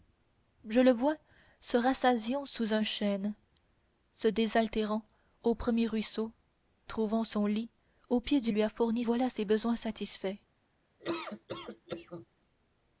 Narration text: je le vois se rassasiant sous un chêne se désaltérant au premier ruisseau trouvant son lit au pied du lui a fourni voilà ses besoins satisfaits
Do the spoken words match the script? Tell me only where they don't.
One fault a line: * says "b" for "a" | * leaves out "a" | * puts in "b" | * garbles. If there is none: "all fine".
all fine